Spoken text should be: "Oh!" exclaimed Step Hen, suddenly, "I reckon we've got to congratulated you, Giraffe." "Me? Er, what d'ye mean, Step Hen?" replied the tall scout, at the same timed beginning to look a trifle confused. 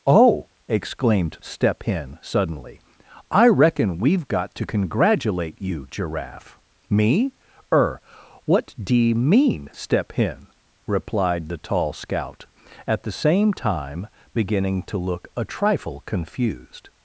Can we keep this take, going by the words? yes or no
no